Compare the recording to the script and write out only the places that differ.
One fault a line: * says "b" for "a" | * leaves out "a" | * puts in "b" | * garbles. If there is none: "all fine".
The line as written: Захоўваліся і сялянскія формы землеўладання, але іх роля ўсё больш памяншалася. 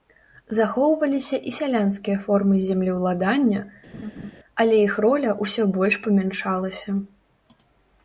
all fine